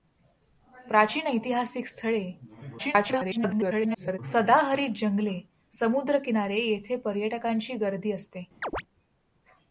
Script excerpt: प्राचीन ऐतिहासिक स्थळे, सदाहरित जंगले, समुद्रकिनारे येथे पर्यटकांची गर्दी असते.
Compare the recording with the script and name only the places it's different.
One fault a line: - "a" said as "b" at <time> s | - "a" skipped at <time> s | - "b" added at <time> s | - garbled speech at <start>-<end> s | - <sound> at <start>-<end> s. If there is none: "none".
- garbled speech at 2.8-4.2 s
- chirp at 8.6-8.8 s